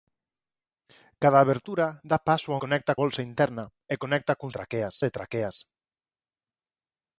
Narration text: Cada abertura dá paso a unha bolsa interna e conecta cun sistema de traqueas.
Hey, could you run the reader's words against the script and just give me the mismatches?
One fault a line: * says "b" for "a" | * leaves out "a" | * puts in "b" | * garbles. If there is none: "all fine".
* says "conecta" for "unha"
* says "traqueas" for "sistema"